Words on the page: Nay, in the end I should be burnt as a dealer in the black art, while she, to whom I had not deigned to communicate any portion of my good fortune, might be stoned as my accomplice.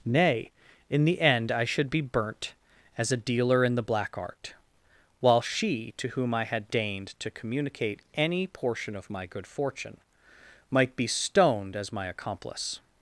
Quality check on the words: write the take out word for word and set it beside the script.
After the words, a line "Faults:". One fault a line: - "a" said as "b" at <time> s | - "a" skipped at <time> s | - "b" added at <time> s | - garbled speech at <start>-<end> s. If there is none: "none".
Nay, in the end I should be burnt as a dealer in the black art, while she, to whom I had deigned to communicate any portion of my good fortune, might be stoned as my accomplice.
Faults:
- "not" skipped at 6.7 s